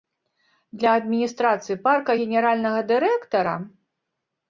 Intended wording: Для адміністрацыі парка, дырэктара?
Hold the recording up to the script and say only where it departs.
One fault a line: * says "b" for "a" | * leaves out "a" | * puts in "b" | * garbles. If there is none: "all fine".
* puts in "генеральнага"